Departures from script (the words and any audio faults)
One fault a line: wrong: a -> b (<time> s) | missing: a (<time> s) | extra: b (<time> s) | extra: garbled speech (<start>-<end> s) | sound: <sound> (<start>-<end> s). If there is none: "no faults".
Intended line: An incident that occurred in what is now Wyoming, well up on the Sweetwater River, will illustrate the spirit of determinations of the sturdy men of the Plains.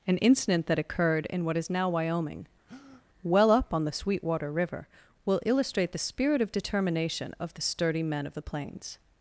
sound: breath (2.7-3.0 s)
wrong: determinations -> determination (6.5 s)